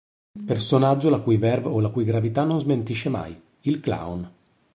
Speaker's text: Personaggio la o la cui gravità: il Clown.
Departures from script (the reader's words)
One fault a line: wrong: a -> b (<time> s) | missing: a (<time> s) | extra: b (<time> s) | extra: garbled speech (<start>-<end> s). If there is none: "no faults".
extra: cui verve (1.2 s)
extra: non smentisce mai (2.4 s)